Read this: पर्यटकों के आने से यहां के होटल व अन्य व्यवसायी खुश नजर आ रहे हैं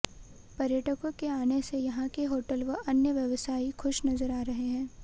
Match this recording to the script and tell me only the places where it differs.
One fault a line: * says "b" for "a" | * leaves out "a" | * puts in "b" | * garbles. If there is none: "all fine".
all fine